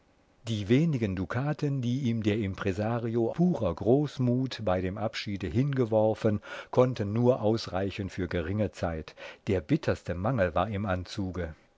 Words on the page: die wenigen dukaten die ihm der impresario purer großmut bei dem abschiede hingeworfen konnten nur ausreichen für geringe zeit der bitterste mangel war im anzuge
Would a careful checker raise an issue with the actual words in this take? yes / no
no